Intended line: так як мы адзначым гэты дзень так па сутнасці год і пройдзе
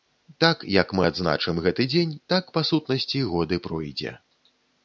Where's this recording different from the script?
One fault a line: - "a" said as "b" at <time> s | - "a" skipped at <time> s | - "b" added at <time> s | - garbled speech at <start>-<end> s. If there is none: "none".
none